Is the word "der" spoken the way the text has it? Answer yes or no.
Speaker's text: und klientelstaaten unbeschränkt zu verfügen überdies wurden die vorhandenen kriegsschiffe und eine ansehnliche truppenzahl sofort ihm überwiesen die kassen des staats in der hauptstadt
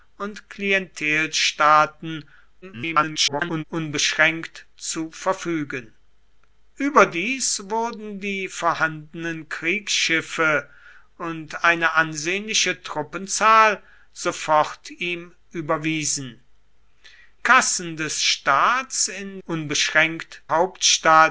no